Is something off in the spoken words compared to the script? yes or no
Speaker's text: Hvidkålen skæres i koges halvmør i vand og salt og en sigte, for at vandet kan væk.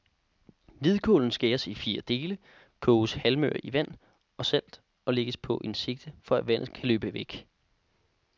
yes